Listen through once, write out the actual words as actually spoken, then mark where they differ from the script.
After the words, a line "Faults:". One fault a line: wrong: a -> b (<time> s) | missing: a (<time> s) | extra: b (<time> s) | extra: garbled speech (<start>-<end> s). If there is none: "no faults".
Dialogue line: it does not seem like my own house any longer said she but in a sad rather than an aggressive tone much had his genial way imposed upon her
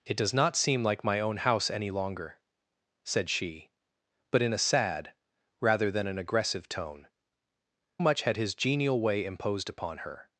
it does not seem like my own house any longer said she but in a sad rather than an aggressive tone much had his genial way imposed upon her
Faults:
no faults